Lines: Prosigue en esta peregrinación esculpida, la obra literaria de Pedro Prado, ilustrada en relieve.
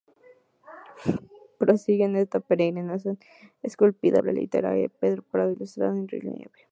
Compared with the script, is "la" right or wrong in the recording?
wrong